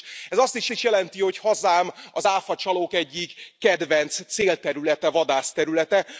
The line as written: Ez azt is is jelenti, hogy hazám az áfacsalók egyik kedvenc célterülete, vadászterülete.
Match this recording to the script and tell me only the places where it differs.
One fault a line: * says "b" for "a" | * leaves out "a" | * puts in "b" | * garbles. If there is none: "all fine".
all fine